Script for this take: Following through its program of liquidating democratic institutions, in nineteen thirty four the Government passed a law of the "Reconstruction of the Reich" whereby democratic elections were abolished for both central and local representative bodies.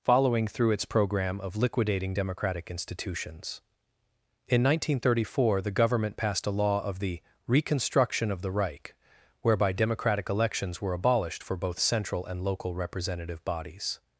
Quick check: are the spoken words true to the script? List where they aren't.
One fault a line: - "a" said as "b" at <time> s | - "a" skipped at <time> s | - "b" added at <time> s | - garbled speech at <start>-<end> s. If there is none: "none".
none